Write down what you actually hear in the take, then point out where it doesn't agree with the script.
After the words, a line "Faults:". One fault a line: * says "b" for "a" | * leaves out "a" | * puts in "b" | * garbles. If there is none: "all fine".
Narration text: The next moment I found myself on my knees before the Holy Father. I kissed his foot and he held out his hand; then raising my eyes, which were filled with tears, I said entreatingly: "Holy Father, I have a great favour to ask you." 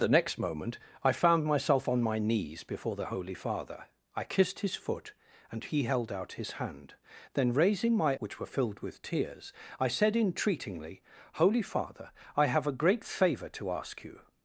The next moment I found myself on my knees before the Holy Father. I kissed his foot and he held out his hand; then raising my which were filled with tears, I said entreatingly: "Holy Father, I have a great favour to ask you."
Faults:
* leaves out "eyes"